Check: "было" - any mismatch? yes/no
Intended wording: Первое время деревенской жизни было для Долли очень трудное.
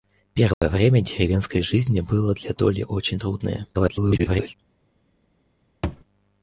no